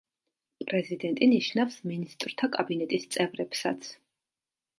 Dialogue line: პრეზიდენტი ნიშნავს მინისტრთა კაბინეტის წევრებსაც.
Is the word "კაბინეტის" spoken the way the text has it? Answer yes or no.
yes